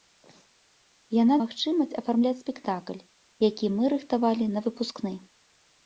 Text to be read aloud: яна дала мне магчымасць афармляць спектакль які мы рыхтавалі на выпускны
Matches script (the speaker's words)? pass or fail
fail